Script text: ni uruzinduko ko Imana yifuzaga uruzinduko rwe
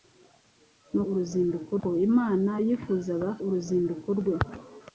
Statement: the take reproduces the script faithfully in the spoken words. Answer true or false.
true